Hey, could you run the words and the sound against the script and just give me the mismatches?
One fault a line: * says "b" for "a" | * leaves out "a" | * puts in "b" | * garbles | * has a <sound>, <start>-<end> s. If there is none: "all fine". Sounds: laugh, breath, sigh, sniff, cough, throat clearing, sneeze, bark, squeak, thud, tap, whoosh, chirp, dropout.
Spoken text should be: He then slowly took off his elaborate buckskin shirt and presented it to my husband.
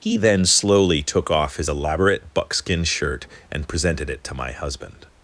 all fine